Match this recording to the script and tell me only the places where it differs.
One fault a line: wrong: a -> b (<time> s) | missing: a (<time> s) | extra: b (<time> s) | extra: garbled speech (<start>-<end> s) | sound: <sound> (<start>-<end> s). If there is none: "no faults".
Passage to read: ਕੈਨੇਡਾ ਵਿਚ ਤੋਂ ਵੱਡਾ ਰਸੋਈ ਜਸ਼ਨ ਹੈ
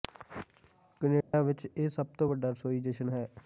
sound: dropout (1.2-1.3 s)
extra: ਇਹ ਸਭ (1.7 s)